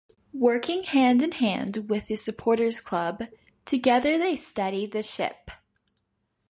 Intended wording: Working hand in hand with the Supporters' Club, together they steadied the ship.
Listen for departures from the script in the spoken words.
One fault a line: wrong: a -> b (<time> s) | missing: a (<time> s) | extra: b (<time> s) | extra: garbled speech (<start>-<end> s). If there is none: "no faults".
no faults